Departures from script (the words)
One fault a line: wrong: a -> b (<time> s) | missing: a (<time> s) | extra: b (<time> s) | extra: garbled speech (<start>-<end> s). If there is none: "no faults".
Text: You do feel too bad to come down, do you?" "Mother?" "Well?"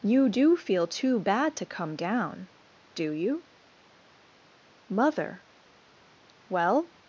no faults